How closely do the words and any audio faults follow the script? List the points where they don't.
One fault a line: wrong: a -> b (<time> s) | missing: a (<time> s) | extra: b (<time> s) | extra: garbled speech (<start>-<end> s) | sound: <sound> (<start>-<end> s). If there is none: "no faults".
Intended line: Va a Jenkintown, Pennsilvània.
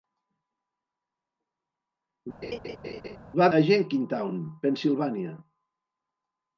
sound: laugh (2.4-3.2 s)